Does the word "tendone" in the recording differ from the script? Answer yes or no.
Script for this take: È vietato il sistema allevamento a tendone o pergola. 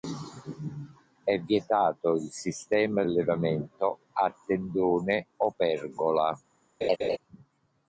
no